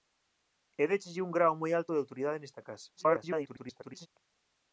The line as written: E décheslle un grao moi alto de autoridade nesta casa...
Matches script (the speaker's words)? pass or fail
fail